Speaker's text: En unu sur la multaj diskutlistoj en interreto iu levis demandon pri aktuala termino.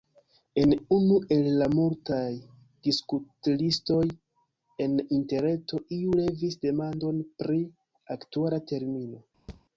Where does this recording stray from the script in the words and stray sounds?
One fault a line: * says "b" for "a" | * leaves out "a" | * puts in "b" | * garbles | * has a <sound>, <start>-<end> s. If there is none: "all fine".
* says "el" for "sur"
* has a thud, 9.5-9.6 s